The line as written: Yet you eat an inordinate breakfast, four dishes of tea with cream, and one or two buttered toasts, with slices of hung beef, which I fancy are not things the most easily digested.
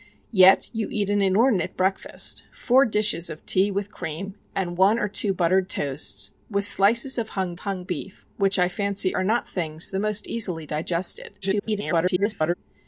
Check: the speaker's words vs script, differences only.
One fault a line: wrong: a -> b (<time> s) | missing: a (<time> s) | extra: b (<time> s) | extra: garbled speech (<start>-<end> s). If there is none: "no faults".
extra: hung (7.6 s)
extra: garbled speech (11.4-12.5 s)